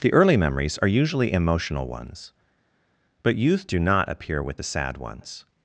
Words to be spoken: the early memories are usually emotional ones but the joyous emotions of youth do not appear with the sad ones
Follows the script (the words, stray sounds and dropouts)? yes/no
no